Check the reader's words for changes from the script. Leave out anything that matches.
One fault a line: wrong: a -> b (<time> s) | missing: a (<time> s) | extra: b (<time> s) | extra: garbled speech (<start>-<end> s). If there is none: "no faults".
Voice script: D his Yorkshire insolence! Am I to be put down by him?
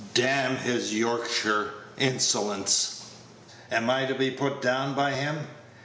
extra: n (0.2 s)